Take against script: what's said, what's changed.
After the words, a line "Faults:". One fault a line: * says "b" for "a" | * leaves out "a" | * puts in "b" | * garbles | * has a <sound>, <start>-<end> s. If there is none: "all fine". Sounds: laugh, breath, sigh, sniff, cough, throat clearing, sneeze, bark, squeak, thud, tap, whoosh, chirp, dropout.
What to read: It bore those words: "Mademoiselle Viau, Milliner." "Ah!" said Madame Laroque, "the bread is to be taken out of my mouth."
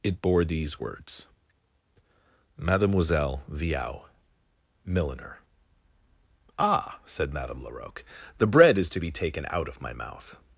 It bore these words: "Mademoiselle Viau, Milliner." "Ah!" said Madame Laroque, "the bread is to be taken out of my mouth."
Faults:
* says "these" for "those"